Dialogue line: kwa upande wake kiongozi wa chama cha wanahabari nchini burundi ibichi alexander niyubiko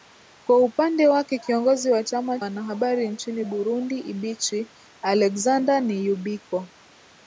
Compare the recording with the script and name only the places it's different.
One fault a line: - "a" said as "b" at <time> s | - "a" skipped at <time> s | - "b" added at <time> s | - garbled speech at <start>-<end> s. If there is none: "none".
- "cha" skipped at 2.4 s